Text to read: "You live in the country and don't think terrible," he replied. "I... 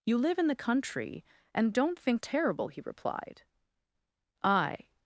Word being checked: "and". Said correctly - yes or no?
yes